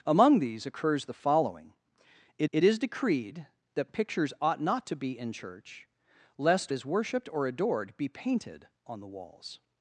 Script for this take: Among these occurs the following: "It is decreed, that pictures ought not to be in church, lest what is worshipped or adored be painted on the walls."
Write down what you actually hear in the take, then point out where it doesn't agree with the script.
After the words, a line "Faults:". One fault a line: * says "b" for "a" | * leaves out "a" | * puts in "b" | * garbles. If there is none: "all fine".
Among these occurs the following: "It it is decreed, that pictures ought not to be in church, lest is worshipped or adored be painted on the walls."
Faults:
* puts in "it"
* leaves out "what"